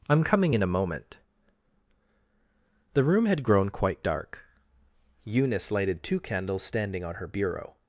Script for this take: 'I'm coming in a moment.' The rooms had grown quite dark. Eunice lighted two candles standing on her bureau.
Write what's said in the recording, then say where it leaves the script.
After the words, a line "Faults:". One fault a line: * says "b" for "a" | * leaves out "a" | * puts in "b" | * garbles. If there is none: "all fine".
'I'm coming in a moment.' The room had grown quite dark. Eunice lighted two candles standing on her bureau.
Faults:
* says "room" for "rooms"